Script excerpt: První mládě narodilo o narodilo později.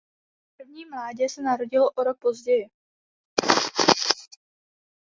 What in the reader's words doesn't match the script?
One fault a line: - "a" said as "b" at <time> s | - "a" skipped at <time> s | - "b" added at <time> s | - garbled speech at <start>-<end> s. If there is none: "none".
- "se" added at 1.3 s
- "narodilo" said as "rok" at 2.0 s